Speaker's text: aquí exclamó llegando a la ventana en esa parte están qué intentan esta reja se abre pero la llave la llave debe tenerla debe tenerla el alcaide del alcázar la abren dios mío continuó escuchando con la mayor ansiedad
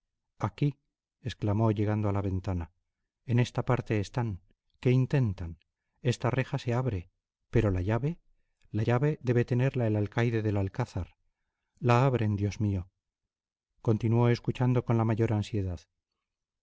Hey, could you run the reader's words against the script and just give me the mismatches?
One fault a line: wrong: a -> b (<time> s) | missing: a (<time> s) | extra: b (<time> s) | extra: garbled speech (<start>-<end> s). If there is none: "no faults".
wrong: esa -> esta (3.4 s)
missing: debe tenerla (9.9 s)